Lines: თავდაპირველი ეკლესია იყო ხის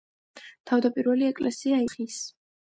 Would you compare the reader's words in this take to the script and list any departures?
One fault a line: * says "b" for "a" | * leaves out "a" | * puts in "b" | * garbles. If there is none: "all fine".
* leaves out "იყო"